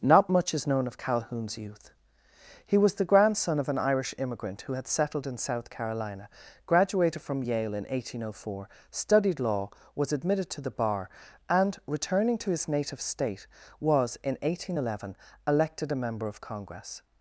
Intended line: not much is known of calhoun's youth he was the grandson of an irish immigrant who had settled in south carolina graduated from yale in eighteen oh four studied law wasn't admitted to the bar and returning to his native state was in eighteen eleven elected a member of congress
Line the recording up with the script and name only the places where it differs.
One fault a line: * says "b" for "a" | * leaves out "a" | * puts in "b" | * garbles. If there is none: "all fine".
* says "was" for "wasn't"